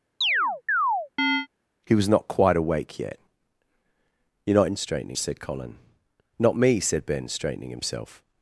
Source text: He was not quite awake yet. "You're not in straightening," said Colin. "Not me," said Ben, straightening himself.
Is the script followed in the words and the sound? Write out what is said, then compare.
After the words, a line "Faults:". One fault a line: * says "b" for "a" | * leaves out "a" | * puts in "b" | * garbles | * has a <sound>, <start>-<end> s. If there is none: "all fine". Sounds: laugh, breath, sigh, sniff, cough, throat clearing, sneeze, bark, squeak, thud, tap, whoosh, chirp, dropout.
He was not quite awake yet. "You're not in straightening," said Colin. "Not me," said Ben, straightening himself.
Faults:
* has a chirp, 0.2-1.5 s